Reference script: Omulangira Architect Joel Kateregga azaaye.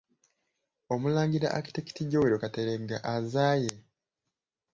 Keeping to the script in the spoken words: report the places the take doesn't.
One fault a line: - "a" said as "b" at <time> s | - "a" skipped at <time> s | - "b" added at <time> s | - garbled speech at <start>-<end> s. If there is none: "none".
none